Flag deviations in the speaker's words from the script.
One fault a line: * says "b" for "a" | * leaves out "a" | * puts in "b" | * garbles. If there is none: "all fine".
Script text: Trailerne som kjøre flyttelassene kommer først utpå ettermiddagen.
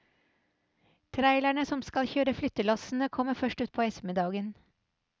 * puts in "skal"